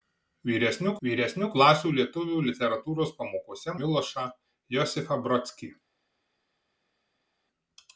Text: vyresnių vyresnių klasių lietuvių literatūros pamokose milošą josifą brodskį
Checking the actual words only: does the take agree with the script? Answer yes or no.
yes